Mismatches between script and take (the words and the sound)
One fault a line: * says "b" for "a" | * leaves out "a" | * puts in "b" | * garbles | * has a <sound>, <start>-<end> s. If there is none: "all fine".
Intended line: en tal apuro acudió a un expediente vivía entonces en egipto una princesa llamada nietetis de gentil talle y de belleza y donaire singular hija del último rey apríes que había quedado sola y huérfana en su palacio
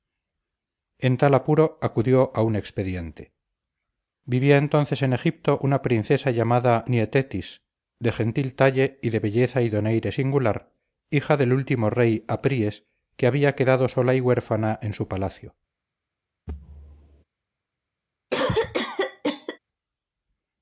* has a thud, 16.5-17.2 s
* has a cough, 18.3-19.6 s